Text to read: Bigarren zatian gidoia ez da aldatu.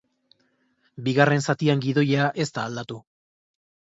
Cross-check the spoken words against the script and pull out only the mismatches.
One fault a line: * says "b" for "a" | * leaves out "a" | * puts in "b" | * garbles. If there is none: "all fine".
all fine